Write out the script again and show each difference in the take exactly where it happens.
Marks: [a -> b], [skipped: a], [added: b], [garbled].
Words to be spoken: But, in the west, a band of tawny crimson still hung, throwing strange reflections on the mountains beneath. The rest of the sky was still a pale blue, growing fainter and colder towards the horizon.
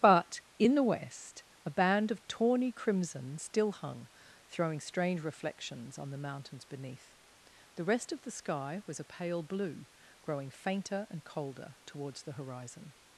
But, in the west, a band of tawny crimson still hung, throwing strange reflections on the mountains beneath. The rest of the sky was [skipped: still] a pale blue, growing fainter and colder towards the horizon.